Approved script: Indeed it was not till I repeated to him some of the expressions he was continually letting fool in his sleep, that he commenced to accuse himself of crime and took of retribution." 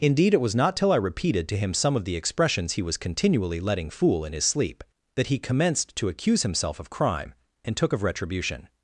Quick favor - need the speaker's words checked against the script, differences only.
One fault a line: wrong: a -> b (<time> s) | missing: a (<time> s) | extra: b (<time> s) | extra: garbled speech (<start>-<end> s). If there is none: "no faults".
no faults